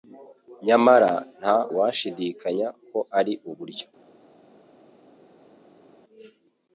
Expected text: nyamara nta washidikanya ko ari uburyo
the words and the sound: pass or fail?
pass